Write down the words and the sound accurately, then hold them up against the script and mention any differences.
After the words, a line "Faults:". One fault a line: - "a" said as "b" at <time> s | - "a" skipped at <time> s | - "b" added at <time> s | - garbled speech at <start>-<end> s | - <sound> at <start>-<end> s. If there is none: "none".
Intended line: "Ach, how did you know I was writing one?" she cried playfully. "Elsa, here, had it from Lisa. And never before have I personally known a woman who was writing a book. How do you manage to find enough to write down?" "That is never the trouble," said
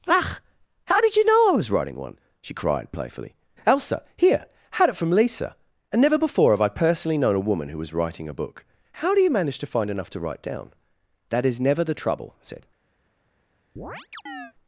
"Ach, how did you know I was writing one?" she cried playfully. "Elsa, here, had it from Lisa. And never before have I personally known a woman who was writing a book. How do you manage to find enough to write down?" "That is never the trouble," said
Faults:
- chirp at 13.8-14.5 s